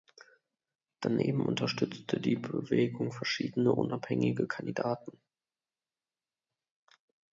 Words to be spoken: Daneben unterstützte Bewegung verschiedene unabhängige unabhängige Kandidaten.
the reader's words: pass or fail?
fail